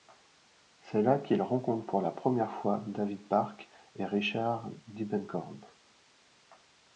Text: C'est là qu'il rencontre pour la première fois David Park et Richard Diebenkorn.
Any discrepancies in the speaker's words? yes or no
no